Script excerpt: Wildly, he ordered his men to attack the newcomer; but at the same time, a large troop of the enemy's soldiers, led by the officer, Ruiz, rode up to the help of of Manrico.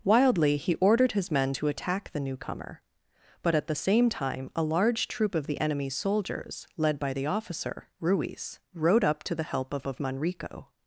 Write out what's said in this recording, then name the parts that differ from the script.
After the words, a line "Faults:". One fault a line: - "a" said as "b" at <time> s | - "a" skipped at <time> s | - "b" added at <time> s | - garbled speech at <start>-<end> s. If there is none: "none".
Wildly, he ordered his men to attack the newcomer; but at the same time, a large troop of the enemy's soldiers, led by the officer, Ruiz, rode up to the help of of Manrico.
Faults:
none